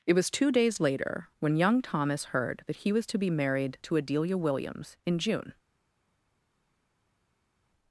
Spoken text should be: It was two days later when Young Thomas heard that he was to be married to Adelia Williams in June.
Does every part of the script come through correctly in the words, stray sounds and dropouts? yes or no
yes